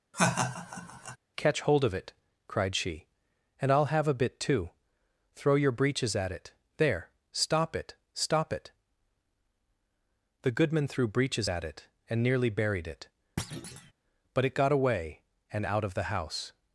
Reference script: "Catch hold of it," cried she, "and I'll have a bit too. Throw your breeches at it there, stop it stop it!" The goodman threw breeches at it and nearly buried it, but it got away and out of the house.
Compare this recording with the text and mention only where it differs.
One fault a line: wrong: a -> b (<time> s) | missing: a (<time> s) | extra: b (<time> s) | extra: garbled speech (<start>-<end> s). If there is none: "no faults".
no faults